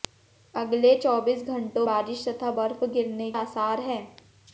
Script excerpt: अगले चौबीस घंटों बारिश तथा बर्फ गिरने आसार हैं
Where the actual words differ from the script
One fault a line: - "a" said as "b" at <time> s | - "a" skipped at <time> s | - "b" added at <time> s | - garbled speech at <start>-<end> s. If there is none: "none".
none